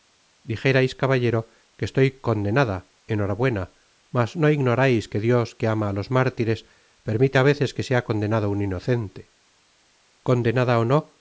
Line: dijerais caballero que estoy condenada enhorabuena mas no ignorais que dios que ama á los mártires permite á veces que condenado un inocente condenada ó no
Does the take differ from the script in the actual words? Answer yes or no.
yes